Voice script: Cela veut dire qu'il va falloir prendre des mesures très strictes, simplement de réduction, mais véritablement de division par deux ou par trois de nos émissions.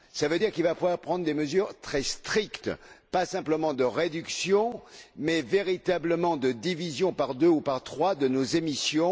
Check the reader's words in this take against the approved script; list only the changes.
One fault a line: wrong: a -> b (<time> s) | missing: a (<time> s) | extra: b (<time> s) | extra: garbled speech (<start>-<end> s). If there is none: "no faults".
extra: pas (3.1 s)